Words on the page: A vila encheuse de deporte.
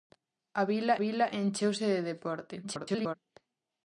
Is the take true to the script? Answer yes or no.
no